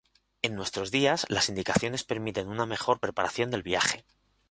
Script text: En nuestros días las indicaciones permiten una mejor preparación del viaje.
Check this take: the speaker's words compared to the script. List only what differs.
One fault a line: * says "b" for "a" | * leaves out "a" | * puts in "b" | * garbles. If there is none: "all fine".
all fine